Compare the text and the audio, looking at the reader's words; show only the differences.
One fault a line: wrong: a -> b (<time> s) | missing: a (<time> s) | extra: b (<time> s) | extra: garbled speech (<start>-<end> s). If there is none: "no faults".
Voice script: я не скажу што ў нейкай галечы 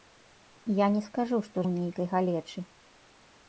no faults